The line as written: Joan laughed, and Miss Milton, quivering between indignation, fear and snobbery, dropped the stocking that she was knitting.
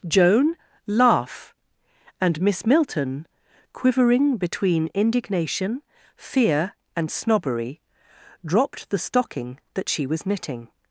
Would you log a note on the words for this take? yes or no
yes